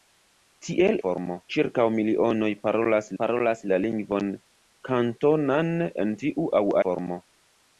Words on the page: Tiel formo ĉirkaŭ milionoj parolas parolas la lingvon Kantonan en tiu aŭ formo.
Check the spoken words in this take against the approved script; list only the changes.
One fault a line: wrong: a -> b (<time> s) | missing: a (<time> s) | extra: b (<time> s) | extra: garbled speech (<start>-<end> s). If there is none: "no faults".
no faults